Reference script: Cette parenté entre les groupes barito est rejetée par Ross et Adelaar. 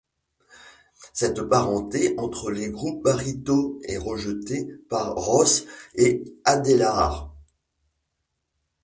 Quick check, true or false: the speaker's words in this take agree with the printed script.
true